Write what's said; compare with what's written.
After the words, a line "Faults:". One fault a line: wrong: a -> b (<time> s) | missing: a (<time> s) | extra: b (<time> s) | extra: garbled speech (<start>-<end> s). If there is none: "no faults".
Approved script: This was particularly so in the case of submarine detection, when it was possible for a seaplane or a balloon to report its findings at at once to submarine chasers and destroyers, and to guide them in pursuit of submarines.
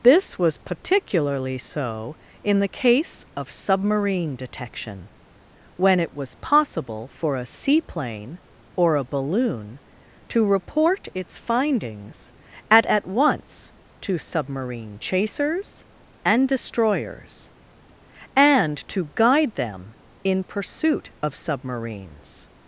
This was particularly so in the case of submarine detection, when it was possible for a seaplane or a balloon to report its findings at at once to submarine chasers and destroyers, and to guide them in pursuit of submarines.
Faults:
no faults